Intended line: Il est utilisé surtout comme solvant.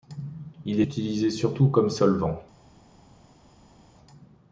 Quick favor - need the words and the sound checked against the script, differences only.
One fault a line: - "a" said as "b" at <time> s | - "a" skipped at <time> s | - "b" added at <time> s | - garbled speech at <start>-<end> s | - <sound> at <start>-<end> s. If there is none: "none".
- "est" skipped at 0.8 s